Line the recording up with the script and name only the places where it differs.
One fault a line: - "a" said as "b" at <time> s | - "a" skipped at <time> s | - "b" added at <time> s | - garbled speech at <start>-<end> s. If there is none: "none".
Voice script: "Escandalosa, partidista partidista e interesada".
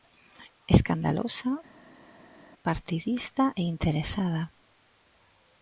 - "partidista" skipped at 3.4 s